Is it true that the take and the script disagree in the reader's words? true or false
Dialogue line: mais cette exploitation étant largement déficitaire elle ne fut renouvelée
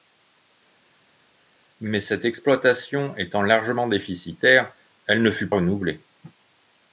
false